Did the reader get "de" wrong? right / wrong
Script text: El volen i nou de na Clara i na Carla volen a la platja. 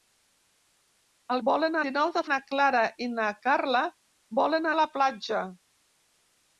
right